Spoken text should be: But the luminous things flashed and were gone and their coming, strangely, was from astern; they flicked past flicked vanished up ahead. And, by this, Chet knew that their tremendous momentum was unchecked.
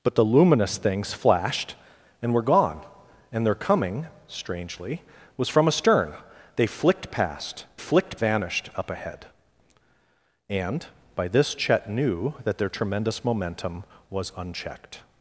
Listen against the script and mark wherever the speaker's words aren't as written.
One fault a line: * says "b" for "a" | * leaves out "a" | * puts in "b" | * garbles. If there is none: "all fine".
all fine